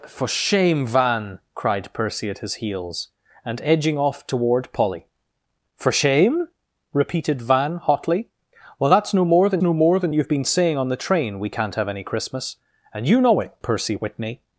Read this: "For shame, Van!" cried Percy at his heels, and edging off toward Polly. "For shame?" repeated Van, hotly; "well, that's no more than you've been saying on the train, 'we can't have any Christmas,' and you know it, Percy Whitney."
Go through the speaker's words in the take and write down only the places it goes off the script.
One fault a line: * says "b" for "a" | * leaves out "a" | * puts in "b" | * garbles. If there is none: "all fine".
* puts in "no more than"